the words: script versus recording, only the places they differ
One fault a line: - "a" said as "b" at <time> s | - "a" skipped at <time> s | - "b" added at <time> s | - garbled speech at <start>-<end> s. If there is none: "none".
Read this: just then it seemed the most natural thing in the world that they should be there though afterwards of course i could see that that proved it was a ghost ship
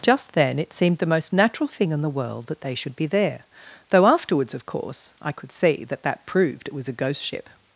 none